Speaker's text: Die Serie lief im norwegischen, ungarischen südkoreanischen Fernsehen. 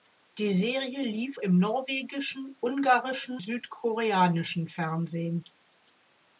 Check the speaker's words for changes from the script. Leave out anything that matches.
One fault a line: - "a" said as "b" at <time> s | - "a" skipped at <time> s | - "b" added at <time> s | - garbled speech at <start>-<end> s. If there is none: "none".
none